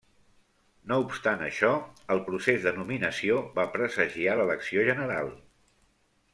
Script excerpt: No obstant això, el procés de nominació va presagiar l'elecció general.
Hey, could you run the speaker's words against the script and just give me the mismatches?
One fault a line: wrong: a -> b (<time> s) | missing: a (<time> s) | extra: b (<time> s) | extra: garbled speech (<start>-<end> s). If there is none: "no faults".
no faults